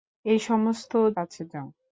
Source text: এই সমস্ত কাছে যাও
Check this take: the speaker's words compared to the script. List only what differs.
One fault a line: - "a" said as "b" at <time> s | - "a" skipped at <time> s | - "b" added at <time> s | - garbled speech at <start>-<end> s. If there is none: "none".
none